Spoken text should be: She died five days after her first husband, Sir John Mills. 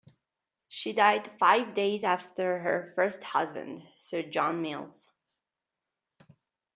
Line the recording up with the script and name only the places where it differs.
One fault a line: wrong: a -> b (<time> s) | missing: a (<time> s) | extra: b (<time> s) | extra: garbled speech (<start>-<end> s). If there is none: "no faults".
no faults